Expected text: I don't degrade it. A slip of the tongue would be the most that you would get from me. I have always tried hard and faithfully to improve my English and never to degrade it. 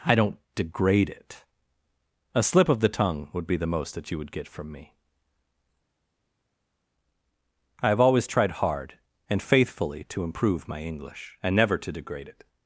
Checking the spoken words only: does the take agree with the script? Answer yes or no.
yes